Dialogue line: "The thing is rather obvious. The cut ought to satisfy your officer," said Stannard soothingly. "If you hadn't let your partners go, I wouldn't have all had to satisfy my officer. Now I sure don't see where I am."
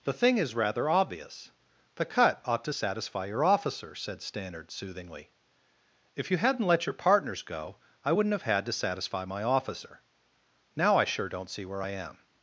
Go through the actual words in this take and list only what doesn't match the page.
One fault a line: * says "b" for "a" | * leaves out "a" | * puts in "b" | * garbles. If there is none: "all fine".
* leaves out "all"